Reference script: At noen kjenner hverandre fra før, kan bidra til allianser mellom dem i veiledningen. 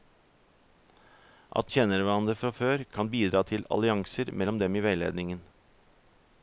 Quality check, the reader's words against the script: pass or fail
fail